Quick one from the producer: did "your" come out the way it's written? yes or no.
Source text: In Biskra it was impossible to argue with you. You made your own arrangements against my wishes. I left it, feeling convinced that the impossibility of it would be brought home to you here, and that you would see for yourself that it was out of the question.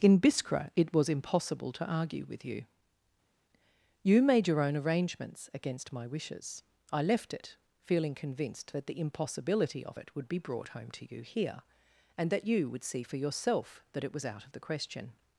yes